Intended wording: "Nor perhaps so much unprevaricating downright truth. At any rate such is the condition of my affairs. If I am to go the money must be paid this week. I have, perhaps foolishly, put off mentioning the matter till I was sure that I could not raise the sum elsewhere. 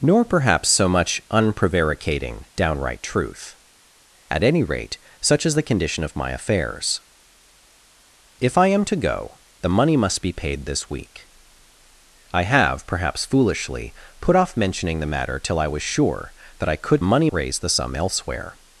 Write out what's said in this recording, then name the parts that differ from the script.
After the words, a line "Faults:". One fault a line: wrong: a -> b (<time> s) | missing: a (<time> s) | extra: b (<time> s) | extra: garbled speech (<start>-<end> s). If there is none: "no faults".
"Nor perhaps so much unprevaricating downright truth. At any rate such is the condition of my affairs. If I am to go the money must be paid this week. I have, perhaps foolishly, put off mentioning the matter till I was sure that I could money raise the sum elsewhere.
Faults:
wrong: not -> money (17.0 s)